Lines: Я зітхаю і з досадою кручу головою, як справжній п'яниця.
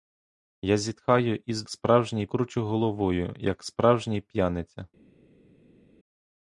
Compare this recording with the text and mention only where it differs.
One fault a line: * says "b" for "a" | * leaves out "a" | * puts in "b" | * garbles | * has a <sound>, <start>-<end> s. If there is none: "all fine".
* says "справжній" for "досадою"